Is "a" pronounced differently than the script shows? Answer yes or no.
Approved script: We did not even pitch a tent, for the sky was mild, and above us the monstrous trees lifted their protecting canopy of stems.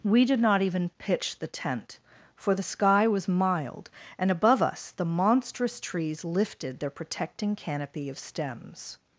yes